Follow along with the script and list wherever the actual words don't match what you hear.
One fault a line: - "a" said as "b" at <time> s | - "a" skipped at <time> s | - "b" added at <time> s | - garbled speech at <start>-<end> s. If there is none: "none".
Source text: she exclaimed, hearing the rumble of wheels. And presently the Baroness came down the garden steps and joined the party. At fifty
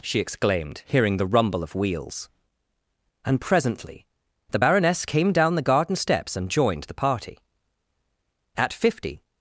none